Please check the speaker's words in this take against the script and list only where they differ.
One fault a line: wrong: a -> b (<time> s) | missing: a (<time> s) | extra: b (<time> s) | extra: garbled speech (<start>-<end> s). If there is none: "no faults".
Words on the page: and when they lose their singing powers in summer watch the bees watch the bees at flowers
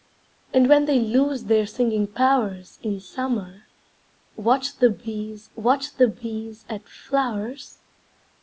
no faults